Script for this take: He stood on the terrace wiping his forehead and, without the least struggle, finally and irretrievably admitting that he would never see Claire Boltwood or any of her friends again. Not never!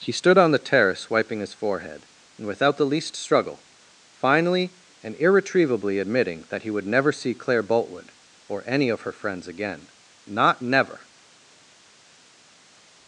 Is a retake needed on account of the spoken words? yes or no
no